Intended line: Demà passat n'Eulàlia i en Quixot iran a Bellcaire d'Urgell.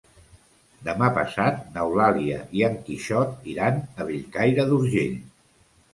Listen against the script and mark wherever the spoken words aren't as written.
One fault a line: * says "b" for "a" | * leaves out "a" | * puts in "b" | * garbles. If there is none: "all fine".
all fine